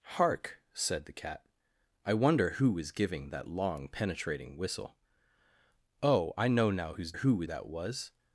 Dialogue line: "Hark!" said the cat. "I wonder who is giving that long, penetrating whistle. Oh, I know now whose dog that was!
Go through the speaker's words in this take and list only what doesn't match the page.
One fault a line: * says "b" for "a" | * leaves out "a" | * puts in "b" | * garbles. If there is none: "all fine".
* says "who" for "dog"